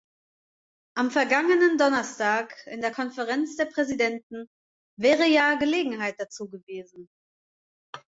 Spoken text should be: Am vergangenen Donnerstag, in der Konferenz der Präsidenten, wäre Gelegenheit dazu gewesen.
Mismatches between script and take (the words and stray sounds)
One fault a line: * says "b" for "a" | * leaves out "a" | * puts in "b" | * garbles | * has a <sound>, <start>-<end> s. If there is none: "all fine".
* puts in "ja"